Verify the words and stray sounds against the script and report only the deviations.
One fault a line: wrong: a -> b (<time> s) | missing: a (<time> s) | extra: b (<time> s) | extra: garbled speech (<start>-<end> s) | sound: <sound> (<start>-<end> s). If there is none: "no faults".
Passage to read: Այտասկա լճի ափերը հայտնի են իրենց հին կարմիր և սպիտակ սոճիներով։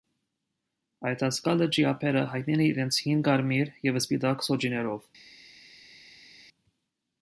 no faults